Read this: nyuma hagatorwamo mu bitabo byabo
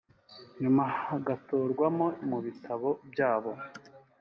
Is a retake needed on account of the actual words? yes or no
no